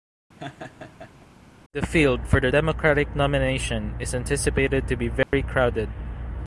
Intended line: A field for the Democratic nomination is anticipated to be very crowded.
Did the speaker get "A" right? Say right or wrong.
wrong